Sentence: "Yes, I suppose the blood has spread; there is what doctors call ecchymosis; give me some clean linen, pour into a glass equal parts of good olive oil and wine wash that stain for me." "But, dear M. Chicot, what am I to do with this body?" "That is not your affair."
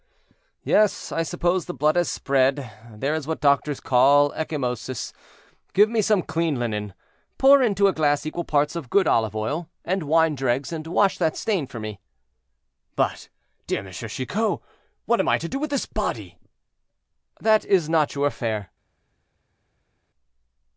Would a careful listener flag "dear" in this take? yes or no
no